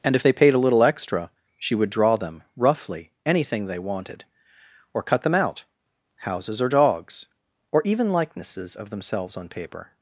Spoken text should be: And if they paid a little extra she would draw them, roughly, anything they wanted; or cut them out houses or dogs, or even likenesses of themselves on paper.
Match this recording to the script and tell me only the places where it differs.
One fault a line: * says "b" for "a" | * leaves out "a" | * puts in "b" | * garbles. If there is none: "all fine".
all fine